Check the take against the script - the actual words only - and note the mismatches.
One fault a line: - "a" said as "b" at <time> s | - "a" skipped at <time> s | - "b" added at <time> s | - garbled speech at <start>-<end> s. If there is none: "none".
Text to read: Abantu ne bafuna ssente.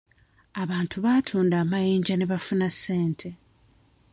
- "baatunda amayinja" added at 1.1 s